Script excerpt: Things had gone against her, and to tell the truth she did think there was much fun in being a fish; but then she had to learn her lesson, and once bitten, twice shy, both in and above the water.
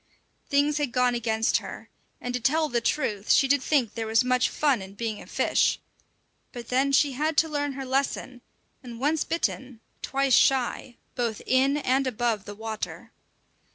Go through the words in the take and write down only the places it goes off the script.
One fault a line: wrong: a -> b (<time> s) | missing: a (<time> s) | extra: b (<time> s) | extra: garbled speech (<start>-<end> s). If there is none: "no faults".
no faults